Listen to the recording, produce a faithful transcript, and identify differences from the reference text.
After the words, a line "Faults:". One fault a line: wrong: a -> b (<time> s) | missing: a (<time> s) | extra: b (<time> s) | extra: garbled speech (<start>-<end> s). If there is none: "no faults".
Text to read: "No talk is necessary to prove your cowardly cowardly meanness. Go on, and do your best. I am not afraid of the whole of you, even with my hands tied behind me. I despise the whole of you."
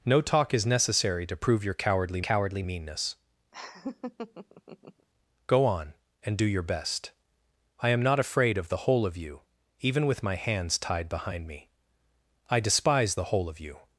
"No talk is necessary to prove your cowardly cowardly meanness. Go on, and do your best. I am not afraid of the whole of you, even with my hands tied behind me. I despise the whole of you."
Faults:
no faults